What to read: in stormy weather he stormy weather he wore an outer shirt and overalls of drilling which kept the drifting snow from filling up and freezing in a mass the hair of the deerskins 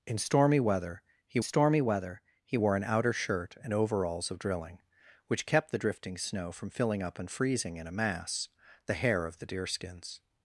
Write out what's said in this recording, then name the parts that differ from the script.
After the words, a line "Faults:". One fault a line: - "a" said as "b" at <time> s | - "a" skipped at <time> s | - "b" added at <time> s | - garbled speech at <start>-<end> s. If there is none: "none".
in stormy weather he stormy weather he wore an outer shirt and overalls of drilling which kept the drifting snow from filling up and freezing in a mass the hair of the deerskins
Faults:
none